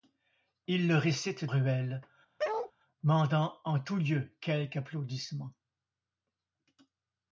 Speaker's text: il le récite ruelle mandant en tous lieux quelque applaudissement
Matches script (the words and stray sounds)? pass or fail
fail